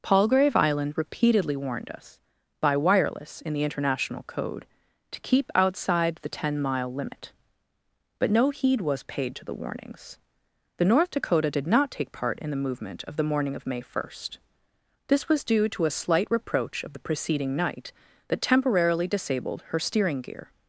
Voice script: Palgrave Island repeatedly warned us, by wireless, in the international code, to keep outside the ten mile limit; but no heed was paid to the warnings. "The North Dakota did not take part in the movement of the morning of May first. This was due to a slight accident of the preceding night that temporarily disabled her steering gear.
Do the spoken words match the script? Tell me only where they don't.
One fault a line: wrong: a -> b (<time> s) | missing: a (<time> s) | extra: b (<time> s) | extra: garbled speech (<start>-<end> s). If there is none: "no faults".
wrong: accident -> reproach (16.3 s)